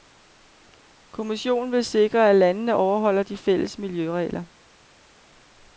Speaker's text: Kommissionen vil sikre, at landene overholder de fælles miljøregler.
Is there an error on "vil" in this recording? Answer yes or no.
no